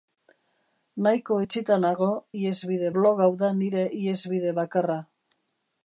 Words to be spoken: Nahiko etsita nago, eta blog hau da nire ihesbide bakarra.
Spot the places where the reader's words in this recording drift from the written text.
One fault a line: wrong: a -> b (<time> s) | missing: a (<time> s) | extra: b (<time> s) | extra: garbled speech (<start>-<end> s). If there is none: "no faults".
wrong: eta -> ihesbide (2.4 s)